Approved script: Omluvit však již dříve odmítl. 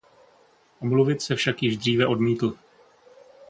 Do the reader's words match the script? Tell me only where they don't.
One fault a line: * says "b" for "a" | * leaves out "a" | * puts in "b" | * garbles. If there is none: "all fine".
* puts in "se"